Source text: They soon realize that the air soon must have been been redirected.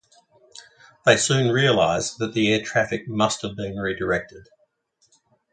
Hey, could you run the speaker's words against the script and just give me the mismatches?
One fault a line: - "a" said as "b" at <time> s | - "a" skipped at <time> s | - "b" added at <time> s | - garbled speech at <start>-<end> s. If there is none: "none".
- "soon" said as "traffic" at 2.6 s
- "been" skipped at 3.8 s